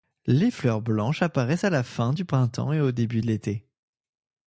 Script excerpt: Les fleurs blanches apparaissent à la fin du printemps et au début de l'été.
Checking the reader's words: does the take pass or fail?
pass